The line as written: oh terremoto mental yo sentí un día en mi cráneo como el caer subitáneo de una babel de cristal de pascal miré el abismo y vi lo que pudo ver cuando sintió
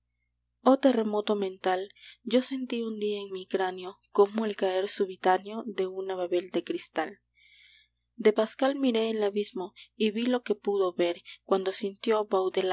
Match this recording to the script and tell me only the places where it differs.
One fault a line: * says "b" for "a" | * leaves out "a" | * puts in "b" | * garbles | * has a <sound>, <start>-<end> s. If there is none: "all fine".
all fine